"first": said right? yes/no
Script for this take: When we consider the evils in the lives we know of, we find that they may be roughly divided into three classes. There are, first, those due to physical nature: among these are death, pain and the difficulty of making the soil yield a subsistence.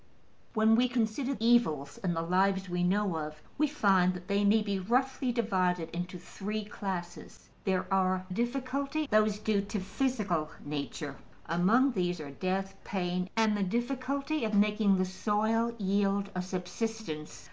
no